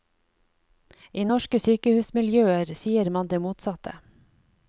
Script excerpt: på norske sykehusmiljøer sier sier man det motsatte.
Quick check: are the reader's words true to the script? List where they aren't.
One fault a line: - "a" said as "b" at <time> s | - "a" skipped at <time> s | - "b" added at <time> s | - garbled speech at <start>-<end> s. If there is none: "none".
- "på" said as "I" at 1.1 s
- "sier" skipped at 3.1 s